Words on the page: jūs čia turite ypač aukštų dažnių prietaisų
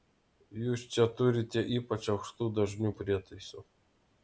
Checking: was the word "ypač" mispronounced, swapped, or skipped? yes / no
no